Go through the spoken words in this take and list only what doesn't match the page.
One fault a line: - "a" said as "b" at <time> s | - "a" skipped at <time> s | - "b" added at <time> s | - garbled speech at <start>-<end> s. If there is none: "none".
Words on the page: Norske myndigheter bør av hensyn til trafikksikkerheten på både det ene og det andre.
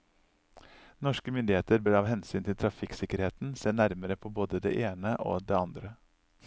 - "se nærmere" added at 3.6 s